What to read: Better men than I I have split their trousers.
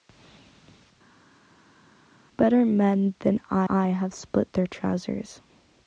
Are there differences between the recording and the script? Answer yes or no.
no